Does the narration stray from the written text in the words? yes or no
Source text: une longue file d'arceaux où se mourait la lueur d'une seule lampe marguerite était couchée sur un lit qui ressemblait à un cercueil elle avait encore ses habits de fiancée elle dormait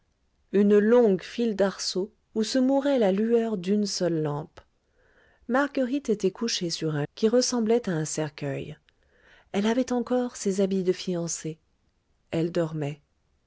yes